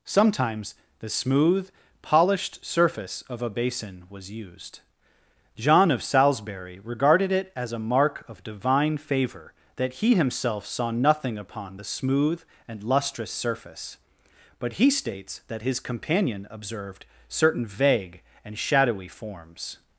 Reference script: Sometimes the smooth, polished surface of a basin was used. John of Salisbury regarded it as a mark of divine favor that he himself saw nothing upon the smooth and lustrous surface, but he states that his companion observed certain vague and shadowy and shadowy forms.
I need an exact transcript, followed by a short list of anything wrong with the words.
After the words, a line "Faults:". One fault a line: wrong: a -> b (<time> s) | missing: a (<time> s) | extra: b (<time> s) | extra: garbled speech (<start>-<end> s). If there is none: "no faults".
Sometimes the smooth, polished surface of a basin was used. John of Salisbury regarded it as a mark of divine favor that he himself saw nothing upon the smooth and lustrous surface, but he states that his companion observed certain vague and shadowy forms.
Faults:
missing: and shadowy (19.1 s)